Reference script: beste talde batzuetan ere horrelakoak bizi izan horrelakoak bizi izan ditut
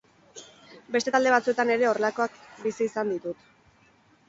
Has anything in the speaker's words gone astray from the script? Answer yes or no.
yes